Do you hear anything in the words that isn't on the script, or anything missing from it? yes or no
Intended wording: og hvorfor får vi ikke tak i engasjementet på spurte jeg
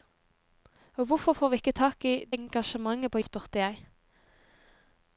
no